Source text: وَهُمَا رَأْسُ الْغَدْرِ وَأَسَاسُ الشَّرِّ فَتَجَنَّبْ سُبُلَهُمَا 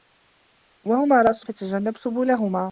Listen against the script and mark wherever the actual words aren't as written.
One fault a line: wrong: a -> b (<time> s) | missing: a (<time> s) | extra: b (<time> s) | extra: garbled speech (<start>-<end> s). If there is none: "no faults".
missing: الْغَدْرِ وَأَسَاسُ الشَّرِّ (1.4 s)